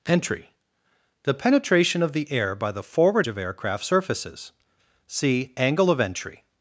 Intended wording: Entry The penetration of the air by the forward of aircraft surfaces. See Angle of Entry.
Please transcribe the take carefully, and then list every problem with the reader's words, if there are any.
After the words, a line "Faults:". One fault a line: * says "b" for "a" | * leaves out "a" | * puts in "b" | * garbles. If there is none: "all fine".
Entry The penetration of the air by the forward of aircraft surfaces. See Angle of Entry.
Faults:
all fine